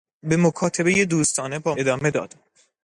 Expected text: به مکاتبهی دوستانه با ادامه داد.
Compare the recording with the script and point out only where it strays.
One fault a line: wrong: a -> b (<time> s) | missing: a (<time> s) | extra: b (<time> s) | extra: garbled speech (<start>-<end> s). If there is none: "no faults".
no faults